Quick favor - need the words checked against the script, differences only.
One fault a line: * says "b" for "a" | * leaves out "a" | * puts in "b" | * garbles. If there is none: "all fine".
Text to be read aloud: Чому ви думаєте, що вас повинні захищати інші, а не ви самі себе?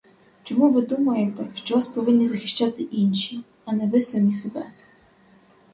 all fine